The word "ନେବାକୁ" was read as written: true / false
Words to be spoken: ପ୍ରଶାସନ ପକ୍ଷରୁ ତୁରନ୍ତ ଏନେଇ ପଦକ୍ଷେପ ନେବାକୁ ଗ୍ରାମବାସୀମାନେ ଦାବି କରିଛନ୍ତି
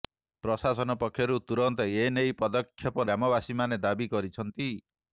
false